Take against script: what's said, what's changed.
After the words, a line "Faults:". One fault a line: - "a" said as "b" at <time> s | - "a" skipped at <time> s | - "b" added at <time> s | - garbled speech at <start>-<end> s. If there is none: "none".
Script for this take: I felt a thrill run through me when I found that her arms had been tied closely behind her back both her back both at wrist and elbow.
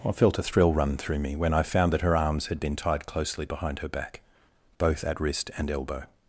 I felt a thrill run through me when I found that her arms had been tied closely behind her back both at wrist and elbow.
Faults:
- "her back both" skipped at 5.0 s